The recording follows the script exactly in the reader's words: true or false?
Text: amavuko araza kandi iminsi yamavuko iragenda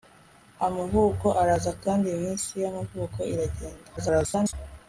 false